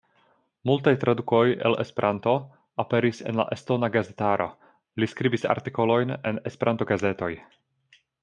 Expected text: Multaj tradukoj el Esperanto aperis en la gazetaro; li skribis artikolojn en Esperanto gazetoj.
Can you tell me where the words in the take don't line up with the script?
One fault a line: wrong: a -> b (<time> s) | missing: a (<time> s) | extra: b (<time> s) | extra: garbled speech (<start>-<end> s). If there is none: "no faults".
extra: estona (3.6 s)